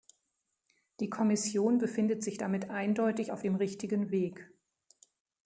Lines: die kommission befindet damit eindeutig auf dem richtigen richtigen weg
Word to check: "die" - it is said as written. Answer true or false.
true